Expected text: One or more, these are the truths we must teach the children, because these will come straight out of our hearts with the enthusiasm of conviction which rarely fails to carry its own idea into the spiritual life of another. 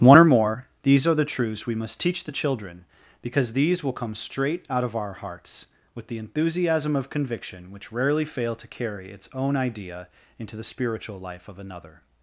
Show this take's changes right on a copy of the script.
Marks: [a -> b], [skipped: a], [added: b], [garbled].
One or more, these are the truths we must teach the children, because these will come straight out of our hearts with the enthusiasm of conviction which rarely [fails -> fail] to carry its own idea into the spiritual life of another.